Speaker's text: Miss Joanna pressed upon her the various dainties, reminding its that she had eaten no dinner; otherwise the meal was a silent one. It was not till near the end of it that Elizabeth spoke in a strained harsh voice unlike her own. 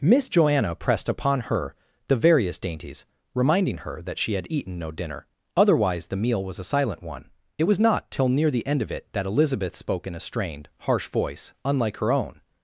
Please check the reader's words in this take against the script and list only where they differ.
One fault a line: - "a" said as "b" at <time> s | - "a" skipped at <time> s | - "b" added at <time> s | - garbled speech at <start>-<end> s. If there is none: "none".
- "its" said as "her" at 3.9 s